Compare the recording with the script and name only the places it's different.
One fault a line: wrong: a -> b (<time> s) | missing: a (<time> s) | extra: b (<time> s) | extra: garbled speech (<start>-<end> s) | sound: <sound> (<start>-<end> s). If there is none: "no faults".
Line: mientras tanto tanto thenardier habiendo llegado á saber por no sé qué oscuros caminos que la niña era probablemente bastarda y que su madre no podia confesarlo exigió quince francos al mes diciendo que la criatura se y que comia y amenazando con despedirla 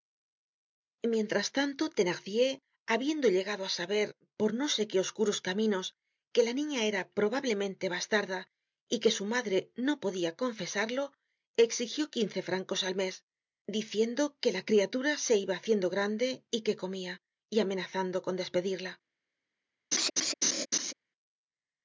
missing: tanto (1.8 s)
extra: iba haciendo grande (15.4 s)
sound: laugh (19.9-20.9 s)